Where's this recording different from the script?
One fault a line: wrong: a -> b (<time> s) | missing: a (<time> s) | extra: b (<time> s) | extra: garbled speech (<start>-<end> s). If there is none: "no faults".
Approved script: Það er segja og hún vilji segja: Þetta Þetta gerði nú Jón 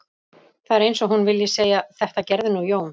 wrong: segja -> eins (0.9 s)
missing: Þetta (2.3 s)